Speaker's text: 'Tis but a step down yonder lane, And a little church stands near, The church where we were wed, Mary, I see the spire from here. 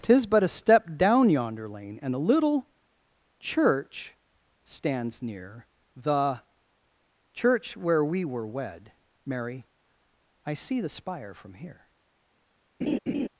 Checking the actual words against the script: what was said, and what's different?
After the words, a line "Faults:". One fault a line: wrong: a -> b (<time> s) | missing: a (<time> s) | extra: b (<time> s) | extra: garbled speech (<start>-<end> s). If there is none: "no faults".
'Tis but a step down yonder lane, And a little church stands near, The church where we were wed, Mary, I see the spire from here.
Faults:
no faults